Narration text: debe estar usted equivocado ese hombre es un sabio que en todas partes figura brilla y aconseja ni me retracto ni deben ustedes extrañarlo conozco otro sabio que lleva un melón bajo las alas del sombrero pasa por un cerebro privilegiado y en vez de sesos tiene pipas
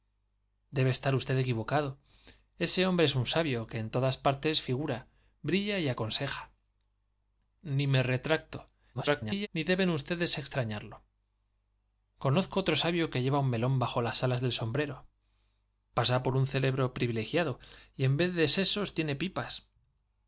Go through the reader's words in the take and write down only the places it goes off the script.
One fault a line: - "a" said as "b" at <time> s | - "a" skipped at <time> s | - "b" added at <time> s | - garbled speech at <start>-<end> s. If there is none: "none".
- garbled speech at 8.9-9.5 s